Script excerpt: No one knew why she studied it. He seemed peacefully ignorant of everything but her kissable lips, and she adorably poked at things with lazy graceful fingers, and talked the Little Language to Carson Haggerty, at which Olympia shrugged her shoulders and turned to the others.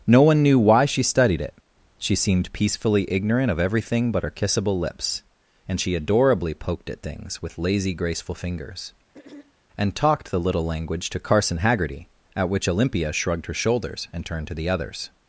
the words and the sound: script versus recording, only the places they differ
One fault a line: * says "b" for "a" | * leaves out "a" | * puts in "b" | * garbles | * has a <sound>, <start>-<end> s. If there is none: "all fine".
* says "She" for "He"
* has a throat clearing, 9.1-9.5 s